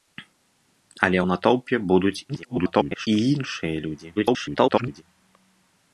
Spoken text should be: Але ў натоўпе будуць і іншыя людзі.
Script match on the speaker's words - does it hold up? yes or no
no